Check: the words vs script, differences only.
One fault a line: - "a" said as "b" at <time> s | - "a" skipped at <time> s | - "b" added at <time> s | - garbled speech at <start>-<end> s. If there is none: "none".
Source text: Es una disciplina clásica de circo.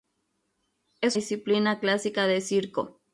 - "una" skipped at 1.2 s